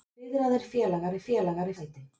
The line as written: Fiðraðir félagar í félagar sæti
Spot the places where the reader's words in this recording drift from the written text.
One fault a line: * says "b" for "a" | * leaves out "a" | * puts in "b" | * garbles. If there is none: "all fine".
all fine